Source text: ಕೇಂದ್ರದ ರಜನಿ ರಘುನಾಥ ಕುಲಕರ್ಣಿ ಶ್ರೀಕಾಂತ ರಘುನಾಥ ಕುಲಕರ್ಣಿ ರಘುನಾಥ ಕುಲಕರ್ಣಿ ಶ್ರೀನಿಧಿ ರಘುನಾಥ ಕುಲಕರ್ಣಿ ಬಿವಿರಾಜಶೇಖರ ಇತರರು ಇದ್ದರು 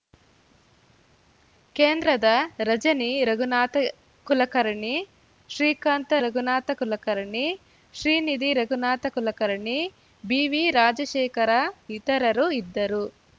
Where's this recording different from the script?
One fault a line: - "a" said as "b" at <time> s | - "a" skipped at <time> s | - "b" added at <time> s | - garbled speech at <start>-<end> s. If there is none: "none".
- "ರಘುನಾಥ ಕುಲಕರ್ಣಿ" skipped at 7.4 s